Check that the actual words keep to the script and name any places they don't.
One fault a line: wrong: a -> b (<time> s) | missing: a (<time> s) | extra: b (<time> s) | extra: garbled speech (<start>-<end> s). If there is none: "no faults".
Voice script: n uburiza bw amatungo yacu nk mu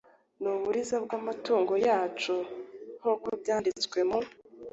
extra: uko byanditswe (3.1 s)